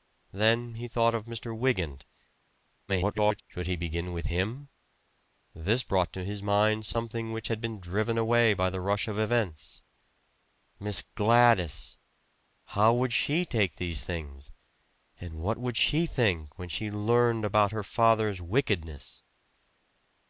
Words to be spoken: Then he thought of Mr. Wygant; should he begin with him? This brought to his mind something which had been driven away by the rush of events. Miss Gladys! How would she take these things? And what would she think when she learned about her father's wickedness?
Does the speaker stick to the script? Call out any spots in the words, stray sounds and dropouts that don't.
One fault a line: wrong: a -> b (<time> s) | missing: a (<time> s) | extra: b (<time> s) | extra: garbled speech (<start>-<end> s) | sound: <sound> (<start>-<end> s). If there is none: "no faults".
extra: garbled speech (2.9-3.4 s)